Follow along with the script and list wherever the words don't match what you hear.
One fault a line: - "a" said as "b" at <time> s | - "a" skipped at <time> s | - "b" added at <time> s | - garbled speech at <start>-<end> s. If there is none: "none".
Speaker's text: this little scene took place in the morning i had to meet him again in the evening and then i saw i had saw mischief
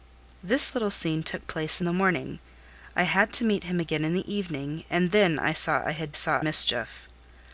none